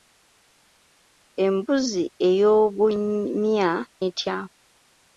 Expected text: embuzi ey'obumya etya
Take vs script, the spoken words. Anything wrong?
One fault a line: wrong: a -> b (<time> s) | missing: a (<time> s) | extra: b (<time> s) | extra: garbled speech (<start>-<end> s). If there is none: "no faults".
no faults